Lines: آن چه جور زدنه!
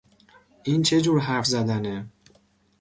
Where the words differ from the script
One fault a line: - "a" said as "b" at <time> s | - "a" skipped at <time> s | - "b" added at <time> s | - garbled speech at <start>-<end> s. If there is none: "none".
- "آن" said as "این" at 0.6 s
- "حرف" added at 1.2 s